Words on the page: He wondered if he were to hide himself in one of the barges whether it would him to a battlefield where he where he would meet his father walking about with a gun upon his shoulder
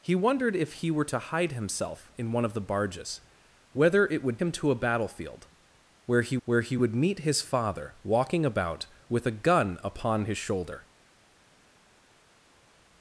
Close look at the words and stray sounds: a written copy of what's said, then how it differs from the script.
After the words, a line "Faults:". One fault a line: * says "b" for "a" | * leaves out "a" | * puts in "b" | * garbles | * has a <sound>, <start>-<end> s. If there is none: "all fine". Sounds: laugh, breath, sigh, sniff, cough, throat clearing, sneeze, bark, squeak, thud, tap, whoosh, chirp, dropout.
He wondered if he were to hide himself in one of the barges whether it would him to a battlefield where he where he would meet his father walking about with a gun upon his shoulder
Faults:
all fine